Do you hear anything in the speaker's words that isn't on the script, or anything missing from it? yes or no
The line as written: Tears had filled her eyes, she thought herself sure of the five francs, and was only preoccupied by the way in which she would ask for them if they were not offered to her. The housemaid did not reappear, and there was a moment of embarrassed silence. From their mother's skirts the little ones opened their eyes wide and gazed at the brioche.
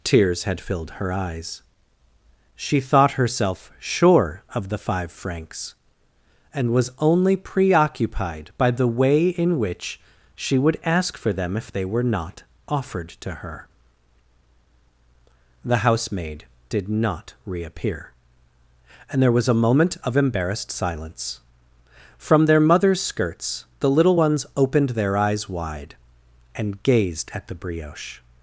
no